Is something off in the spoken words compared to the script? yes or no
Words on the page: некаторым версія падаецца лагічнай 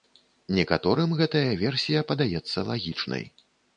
yes